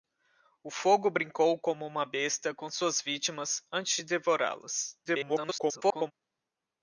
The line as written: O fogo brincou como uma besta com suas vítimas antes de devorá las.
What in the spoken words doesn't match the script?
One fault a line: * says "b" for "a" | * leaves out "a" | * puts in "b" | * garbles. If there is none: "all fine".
* garbles